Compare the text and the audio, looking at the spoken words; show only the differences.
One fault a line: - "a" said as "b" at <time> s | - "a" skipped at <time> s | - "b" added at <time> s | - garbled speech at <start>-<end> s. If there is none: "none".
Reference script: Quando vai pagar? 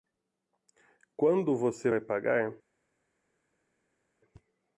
- "você" added at 1.6 s